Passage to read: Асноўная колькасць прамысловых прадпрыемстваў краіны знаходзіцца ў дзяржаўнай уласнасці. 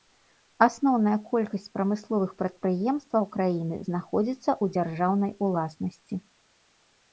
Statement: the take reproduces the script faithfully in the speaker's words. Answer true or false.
true